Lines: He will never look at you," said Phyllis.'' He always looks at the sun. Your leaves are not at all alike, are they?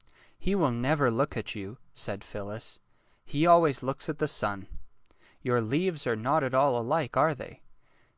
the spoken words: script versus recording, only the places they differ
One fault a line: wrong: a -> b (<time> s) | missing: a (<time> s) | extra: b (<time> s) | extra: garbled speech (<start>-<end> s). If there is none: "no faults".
no faults